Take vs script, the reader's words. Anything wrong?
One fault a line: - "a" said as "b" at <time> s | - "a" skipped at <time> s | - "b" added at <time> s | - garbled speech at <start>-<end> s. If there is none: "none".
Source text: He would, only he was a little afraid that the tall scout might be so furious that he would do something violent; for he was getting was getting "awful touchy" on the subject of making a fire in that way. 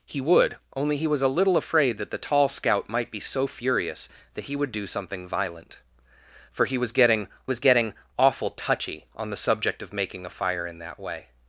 none